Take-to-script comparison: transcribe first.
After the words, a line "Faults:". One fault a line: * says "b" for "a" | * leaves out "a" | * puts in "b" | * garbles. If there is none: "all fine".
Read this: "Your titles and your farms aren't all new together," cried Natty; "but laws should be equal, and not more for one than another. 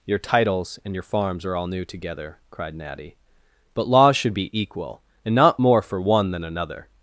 "Your titles and your farms are all new together," cried Natty; "but laws should be equal, and not more for one than another.
Faults:
* says "are" for "aren't"